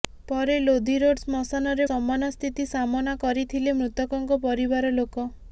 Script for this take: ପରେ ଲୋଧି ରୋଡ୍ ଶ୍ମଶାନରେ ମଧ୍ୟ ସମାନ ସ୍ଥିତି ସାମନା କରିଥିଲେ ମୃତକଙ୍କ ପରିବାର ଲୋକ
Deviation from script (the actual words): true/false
true